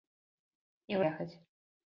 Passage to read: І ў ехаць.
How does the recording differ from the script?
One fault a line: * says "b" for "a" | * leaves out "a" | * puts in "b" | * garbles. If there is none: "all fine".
all fine